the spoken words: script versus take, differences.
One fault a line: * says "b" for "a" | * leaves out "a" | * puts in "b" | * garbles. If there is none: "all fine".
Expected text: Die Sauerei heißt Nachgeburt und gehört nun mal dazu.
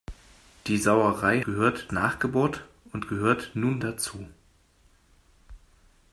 * says "gehört" for "heißt"
* leaves out "mal"